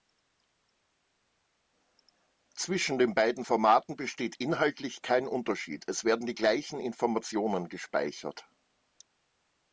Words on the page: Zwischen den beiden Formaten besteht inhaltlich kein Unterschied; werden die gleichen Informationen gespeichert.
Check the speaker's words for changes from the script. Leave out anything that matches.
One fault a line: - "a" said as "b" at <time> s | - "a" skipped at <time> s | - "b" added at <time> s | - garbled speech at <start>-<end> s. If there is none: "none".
- "es" added at 5.9 s